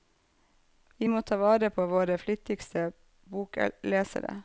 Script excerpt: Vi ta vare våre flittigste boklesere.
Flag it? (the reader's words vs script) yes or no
yes